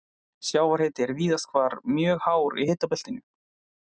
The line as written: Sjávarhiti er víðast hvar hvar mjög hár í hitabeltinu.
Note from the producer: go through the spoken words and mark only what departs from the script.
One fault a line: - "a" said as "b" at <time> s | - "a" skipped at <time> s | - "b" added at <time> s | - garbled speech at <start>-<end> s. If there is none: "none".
- "hvar" skipped at 1.8 s